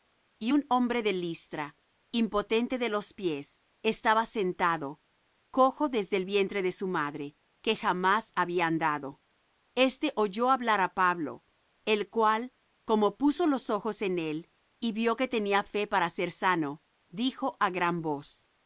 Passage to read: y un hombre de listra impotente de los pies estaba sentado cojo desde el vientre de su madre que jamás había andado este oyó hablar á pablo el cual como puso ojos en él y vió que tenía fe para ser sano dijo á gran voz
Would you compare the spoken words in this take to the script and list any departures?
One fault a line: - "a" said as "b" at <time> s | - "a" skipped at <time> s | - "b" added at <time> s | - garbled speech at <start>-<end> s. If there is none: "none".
- "los" added at 13.5 s